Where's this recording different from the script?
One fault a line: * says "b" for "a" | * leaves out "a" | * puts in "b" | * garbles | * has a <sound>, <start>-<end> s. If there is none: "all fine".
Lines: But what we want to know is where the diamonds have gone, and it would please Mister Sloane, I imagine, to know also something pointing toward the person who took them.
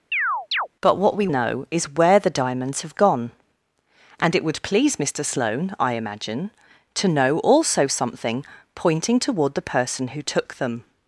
* has a chirp, 0.1-0.7 s
* leaves out "want to"